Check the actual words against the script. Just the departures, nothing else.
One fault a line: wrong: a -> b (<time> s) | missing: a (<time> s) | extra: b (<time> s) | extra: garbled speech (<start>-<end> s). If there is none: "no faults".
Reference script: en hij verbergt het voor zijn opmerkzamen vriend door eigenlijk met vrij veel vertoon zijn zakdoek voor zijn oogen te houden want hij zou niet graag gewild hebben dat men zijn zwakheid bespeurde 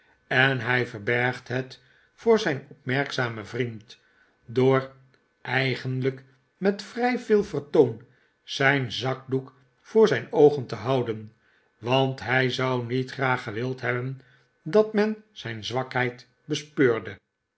no faults